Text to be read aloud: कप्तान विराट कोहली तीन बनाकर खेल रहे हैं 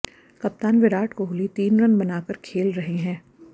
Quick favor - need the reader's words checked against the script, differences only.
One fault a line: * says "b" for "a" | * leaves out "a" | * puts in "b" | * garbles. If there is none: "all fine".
* puts in "रन"